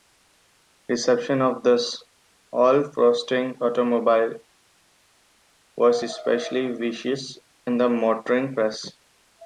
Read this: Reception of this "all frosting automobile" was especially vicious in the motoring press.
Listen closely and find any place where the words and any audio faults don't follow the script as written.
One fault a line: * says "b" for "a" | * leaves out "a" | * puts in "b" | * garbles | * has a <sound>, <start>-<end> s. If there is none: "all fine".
all fine